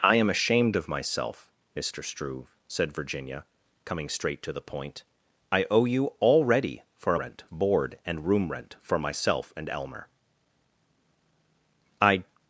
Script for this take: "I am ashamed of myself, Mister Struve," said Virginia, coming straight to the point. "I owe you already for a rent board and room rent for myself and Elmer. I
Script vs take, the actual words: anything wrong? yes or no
no